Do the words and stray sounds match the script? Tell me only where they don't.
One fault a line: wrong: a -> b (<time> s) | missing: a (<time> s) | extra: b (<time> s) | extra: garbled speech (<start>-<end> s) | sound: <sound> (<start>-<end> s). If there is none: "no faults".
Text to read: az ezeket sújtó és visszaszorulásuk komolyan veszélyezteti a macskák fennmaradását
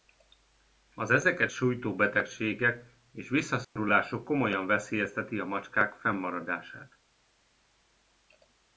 extra: betegségek (2.0 s)
sound: dropout (3.6-3.8 s)